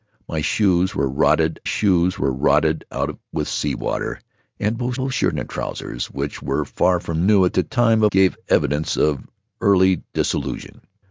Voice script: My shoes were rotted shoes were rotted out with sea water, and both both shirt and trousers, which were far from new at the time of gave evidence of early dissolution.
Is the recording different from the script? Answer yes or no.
no